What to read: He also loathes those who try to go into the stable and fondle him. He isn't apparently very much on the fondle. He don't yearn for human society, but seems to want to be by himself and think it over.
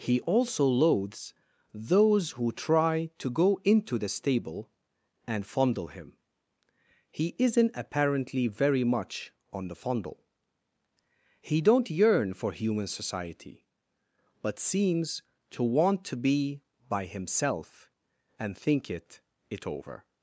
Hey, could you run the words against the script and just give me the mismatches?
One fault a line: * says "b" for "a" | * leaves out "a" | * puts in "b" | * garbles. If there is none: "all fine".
* puts in "it"